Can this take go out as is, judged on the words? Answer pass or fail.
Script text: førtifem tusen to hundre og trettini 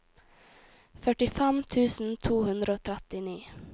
pass